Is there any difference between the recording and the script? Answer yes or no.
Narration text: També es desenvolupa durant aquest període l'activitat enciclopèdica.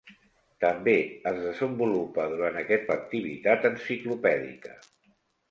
yes